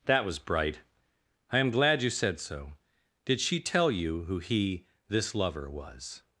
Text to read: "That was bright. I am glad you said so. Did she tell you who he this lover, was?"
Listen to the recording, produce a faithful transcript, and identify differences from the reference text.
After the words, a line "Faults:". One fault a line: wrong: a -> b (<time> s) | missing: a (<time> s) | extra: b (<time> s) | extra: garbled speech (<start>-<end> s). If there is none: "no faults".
"That was bright. I am glad you said so. Did she tell you who he this lover, was?"
Faults:
no faults